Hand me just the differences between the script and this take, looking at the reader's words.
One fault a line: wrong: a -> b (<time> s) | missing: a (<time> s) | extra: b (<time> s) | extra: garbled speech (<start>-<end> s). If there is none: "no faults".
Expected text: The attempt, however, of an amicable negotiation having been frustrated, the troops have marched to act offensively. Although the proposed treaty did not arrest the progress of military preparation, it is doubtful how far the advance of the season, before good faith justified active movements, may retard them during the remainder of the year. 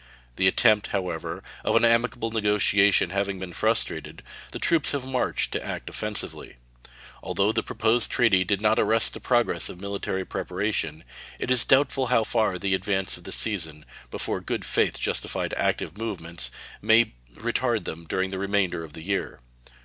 no faults